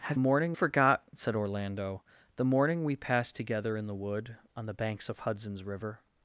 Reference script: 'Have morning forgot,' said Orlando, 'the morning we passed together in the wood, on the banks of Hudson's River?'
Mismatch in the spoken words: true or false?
false